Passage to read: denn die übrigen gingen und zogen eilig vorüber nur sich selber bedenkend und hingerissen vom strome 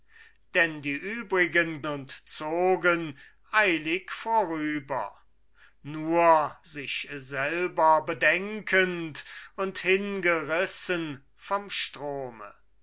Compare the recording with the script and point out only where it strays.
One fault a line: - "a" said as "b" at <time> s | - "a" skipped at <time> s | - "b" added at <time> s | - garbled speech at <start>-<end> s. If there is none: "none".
- "gingen" skipped at 1.8 s